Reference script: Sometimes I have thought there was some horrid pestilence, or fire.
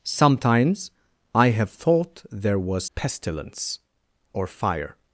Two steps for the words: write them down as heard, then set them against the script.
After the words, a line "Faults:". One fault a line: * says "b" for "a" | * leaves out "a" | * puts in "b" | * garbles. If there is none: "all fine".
Sometimes I have thought there was pestilence, or fire.
Faults:
* leaves out "some horrid"